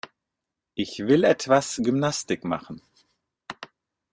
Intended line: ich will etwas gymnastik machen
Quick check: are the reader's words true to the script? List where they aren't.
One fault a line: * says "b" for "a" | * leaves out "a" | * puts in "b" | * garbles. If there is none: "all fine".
all fine